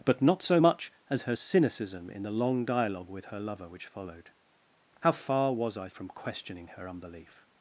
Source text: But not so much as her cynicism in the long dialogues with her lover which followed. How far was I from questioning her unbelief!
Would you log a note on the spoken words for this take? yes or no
yes